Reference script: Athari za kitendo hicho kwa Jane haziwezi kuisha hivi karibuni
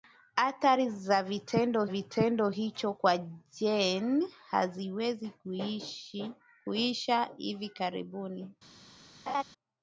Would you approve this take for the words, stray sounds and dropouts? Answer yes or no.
no